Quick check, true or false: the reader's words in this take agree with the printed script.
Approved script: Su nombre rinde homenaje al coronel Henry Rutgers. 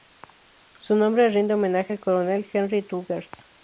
true